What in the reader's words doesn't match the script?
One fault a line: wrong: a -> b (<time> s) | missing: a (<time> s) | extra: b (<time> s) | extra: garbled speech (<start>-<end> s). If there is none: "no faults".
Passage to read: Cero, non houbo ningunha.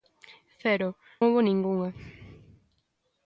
missing: non (0.9 s)